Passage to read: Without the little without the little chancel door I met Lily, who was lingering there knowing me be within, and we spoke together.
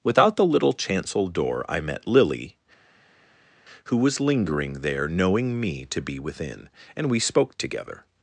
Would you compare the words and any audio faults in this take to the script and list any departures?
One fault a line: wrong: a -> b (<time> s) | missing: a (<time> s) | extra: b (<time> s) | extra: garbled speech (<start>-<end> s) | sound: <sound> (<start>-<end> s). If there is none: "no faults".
missing: without the little (0.7 s)
extra: to (5.9 s)